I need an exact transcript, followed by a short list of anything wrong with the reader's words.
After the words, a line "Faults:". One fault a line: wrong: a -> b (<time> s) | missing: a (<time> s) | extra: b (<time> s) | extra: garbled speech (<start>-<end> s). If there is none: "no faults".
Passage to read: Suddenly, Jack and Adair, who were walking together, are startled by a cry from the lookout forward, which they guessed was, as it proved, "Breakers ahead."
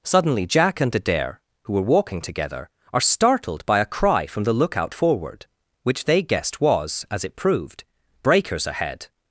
Suddenly, Jack and Adair, who were walking together, are startled by a cry from the lookout forward, which they guessed was, as it proved, "Breakers ahead."
Faults:
no faults